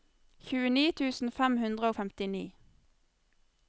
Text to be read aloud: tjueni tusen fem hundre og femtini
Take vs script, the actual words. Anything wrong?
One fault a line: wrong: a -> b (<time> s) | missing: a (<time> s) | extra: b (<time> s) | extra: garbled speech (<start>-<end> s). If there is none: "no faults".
no faults